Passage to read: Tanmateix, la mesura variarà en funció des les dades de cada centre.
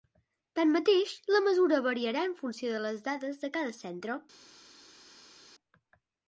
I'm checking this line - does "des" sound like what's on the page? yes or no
no